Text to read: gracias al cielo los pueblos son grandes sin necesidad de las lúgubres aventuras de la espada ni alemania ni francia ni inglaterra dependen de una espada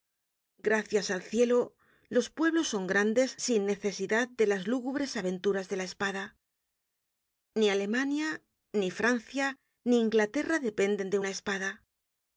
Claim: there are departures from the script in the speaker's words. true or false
false